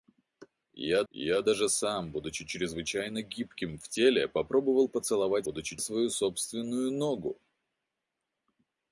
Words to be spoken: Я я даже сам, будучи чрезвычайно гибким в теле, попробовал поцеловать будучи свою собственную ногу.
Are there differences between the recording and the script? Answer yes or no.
no